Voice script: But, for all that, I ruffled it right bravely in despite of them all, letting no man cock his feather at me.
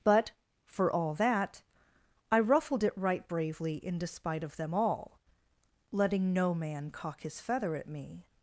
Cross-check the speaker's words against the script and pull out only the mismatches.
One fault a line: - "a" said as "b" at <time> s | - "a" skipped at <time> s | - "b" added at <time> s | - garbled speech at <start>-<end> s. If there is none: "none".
none